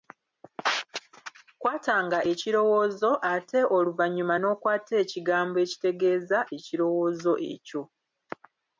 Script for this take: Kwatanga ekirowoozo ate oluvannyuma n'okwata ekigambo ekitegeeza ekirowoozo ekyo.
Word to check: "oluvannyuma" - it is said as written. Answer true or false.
true